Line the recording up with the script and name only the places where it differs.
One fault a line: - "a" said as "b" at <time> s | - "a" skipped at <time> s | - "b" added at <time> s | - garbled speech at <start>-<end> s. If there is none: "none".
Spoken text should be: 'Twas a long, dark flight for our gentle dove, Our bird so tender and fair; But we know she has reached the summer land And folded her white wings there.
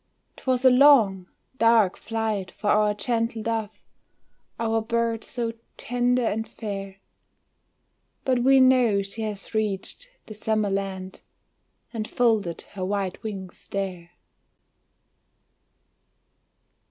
none